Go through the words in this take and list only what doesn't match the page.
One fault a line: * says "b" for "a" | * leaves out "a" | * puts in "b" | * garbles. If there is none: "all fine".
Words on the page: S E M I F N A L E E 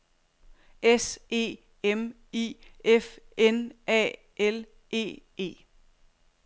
all fine